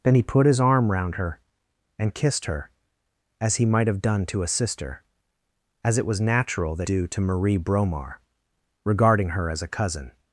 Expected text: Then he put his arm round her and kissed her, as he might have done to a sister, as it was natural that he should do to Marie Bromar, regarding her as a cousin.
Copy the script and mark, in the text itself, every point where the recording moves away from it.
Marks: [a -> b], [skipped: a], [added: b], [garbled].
Then he put his arm round her and kissed her, as he might have done to a sister, as it was natural that [skipped: he should] do to Marie Bromar, regarding her as a cousin.